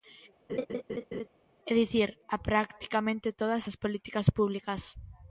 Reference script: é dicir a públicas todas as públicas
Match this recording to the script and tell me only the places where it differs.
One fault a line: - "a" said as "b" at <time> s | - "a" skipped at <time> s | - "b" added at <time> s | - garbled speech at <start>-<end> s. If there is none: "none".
- "públicas" said as "practicamente" at 2.5 s
- "políticas" added at 3.8 s